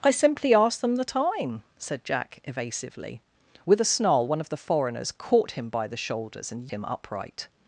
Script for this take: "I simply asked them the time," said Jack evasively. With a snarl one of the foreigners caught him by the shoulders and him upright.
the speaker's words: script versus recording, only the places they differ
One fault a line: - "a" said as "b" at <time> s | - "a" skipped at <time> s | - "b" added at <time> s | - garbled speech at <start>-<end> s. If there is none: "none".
none